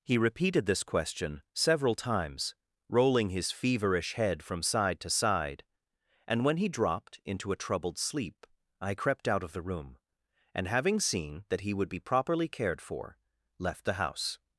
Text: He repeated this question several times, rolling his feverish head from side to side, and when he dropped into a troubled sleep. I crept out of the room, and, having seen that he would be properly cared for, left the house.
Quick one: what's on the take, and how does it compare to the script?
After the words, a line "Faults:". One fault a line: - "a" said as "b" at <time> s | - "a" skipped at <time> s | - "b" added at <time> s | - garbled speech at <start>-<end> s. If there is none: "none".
He repeated this question several times, rolling his feverish head from side to side, and when he dropped into a troubled sleep. I crept out of the room, and, having seen that he would be properly cared for, left the house.
Faults:
none